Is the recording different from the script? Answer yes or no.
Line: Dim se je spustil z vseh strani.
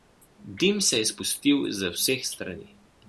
no